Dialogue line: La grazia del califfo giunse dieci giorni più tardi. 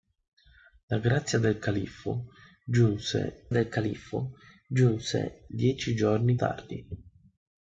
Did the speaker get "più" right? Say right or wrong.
wrong